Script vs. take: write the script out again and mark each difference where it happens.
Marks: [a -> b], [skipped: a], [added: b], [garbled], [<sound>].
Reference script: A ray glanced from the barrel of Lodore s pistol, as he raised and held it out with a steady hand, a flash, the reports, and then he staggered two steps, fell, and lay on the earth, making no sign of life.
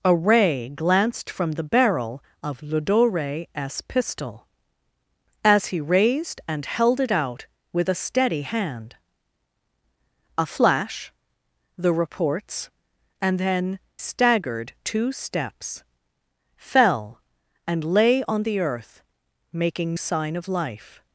A ray glanced from the barrel of Lodore s pistol, as he raised and held it out with a steady hand, a flash, the reports, and then [skipped: he] staggered two steps, fell, and lay on the earth, making [skipped: no] sign of life.